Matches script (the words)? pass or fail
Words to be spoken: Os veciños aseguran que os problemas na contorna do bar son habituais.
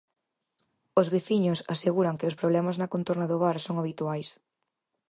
pass